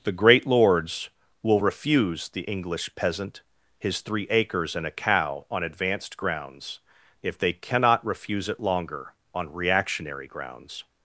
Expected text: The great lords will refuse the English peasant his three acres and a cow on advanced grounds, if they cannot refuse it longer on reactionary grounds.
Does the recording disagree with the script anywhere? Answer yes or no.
no